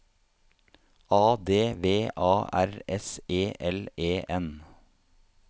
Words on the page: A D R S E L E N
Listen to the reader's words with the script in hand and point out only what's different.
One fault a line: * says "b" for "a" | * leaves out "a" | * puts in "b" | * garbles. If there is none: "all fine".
* puts in "V A"